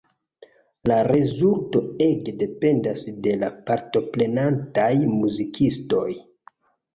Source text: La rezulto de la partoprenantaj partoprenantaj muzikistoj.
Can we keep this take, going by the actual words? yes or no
no